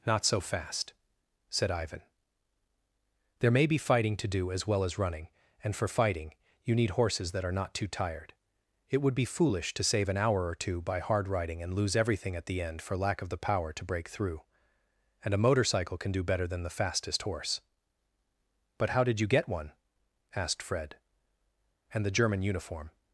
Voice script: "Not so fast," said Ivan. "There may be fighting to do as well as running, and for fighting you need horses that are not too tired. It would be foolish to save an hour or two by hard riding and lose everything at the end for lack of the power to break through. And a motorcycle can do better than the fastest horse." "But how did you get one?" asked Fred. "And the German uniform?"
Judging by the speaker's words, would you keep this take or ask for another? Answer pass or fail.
pass